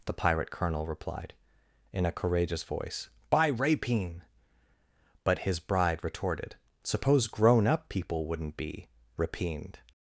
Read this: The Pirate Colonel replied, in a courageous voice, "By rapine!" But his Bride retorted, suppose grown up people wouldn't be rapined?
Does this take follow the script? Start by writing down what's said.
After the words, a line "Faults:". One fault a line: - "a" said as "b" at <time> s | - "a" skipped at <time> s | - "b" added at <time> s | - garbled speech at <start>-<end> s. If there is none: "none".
The Pirate Colonel replied, in a courageous voice, "By rapine!" But his Bride retorted, suppose grown up people wouldn't be rapined?
Faults:
none